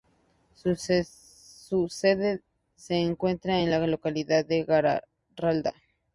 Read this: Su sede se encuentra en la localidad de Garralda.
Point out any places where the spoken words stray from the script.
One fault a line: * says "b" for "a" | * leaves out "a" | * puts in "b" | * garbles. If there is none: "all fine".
all fine